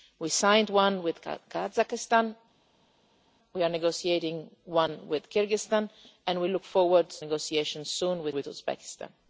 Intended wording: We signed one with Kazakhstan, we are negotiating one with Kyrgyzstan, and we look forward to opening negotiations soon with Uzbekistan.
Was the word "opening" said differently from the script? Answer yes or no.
yes